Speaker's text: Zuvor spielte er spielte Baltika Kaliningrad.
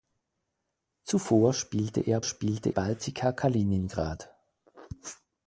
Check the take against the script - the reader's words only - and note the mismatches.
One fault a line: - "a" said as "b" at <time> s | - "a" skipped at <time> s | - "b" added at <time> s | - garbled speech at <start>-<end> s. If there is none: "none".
none